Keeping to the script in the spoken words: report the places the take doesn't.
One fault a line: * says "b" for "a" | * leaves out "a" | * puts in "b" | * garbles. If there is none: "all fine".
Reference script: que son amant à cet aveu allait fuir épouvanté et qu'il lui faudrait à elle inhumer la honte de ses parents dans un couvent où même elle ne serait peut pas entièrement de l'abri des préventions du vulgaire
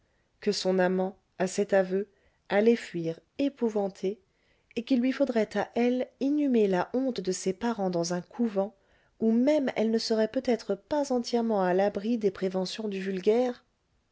* puts in "être"
* says "à" for "de"